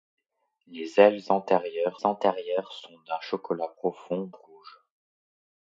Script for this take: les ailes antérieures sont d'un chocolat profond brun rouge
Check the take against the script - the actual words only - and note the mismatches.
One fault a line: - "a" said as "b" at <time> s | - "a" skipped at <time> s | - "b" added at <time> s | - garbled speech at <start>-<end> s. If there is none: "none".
- "antérieures" added at 2.0 s
- "brun" skipped at 4.3 s